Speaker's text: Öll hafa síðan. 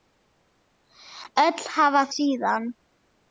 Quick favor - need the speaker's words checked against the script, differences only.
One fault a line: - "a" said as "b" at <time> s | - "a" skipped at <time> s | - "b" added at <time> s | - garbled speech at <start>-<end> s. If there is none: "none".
none